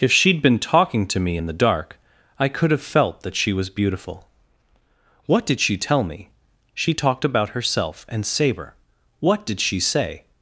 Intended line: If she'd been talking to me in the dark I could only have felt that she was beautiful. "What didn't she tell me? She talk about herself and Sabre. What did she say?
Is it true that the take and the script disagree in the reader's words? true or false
true